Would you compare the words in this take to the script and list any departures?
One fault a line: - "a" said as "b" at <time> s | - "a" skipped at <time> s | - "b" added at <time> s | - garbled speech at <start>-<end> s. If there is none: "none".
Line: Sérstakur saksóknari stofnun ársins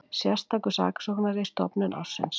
none